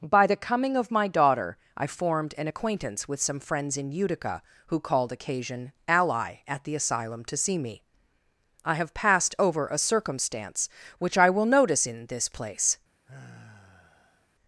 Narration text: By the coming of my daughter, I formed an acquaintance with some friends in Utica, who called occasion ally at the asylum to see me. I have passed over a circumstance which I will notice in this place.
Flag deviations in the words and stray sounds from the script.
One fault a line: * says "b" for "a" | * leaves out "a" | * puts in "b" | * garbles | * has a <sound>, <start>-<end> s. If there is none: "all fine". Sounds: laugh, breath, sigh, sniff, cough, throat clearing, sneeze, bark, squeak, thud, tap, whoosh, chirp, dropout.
* has a sigh, 13.1-14.3 s